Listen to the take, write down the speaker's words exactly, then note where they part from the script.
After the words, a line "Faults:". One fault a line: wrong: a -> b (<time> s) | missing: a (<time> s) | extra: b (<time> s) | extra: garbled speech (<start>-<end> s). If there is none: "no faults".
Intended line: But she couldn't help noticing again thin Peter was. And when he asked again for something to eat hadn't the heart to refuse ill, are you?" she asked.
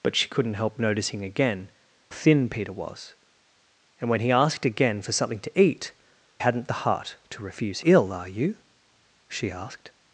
But she couldn't help noticing again thin Peter was. And when he asked again for something to eat hadn't the heart to refuse ill, are you?" she asked.
Faults:
no faults